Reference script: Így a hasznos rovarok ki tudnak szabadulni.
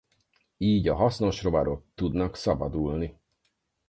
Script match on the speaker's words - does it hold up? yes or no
no